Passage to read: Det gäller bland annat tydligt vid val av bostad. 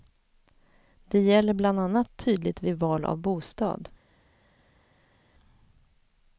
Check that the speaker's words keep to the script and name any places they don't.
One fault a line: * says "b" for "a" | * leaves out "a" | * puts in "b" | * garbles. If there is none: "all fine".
all fine